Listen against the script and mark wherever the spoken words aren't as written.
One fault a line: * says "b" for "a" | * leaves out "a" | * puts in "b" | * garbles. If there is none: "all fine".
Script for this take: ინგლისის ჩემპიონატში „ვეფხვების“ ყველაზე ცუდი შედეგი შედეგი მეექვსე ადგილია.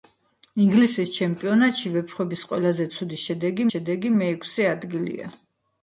all fine